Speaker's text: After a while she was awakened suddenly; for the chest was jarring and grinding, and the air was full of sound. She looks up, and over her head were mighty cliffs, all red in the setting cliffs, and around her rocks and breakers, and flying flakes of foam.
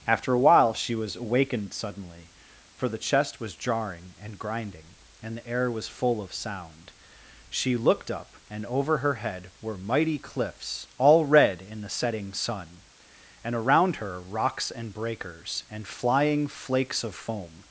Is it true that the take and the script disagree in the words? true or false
true